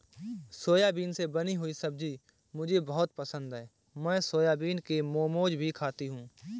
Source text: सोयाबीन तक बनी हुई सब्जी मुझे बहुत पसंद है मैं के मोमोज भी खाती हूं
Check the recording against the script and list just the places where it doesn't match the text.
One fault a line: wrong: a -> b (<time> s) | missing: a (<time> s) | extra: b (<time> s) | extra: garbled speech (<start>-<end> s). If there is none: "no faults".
wrong: तक -> से (1.1 s)
extra: सोयाबीन (4.2 s)